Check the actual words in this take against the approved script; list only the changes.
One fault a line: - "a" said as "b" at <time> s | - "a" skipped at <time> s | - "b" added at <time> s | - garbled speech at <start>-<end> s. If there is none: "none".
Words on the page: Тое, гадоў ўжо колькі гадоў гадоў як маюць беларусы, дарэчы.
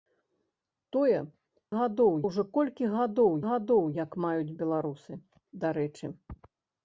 none